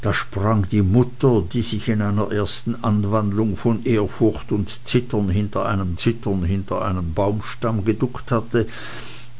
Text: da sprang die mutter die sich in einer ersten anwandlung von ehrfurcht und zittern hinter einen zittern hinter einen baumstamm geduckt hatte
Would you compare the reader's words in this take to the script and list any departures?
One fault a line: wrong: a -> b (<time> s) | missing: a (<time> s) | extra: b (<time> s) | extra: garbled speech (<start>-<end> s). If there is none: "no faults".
no faults